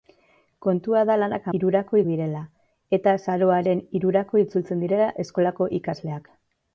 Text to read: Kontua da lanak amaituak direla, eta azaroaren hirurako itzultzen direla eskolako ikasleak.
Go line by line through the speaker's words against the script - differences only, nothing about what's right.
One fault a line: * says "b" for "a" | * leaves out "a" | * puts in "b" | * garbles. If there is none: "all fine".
* says "hirurako" for "amaituak"